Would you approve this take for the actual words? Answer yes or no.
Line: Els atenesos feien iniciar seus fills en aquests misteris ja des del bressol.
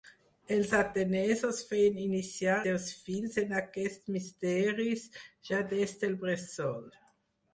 yes